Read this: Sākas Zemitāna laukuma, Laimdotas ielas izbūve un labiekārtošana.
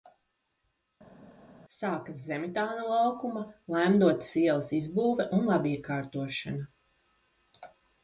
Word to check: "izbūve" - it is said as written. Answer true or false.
true